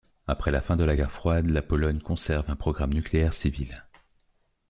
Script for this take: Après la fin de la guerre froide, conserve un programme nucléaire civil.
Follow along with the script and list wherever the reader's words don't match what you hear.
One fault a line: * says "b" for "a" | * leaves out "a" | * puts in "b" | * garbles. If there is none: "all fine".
* puts in "la Pologne"